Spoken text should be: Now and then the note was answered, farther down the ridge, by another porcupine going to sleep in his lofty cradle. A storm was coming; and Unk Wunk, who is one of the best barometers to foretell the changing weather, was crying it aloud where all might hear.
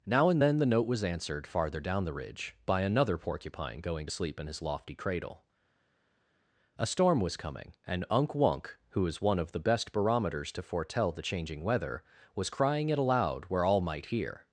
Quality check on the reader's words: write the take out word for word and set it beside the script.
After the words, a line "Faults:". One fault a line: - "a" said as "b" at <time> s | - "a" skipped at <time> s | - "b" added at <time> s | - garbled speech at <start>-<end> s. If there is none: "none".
Now and then the note was answered, farther down the ridge, by another porcupine going to sleep in his lofty cradle. A storm was coming; and Unk Wunk, who is one of the best barometers to foretell the changing weather, was crying it aloud where all might hear.
Faults:
none